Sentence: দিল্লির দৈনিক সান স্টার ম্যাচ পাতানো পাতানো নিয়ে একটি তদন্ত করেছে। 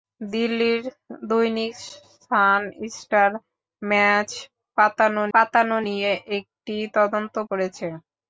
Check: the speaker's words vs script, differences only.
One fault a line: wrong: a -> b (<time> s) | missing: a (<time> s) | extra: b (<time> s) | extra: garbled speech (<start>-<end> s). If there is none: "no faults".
no faults